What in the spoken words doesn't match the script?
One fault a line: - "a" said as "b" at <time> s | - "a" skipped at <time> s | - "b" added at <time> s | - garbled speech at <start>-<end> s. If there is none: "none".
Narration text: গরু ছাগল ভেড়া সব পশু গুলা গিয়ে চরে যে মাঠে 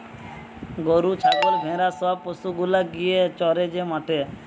none